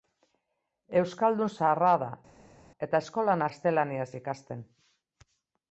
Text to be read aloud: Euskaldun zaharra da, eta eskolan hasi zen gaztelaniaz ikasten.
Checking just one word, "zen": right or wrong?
wrong